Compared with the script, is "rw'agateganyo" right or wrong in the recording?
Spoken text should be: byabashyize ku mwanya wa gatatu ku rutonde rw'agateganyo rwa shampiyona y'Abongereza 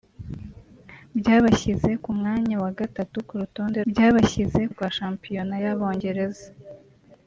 wrong